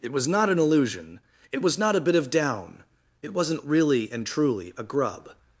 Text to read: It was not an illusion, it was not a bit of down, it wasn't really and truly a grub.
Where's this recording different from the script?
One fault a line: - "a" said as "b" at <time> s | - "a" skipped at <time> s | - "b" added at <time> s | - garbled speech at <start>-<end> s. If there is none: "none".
none